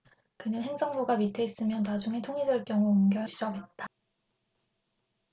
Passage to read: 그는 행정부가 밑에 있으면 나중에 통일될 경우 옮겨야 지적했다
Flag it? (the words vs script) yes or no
no